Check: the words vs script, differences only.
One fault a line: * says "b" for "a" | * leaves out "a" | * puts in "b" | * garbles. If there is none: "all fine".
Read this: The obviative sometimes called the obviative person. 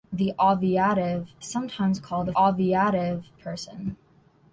all fine